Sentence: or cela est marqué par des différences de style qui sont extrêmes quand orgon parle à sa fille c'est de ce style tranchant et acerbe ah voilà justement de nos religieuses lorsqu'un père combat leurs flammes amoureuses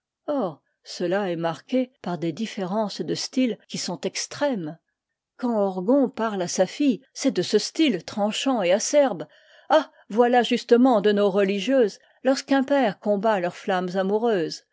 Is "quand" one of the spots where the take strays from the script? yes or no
no